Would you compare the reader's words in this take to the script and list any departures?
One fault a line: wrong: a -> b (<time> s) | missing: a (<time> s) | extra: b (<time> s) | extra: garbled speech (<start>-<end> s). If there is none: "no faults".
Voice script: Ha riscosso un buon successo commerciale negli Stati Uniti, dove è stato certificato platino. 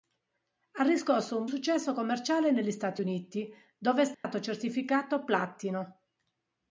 missing: buon (1.4 s)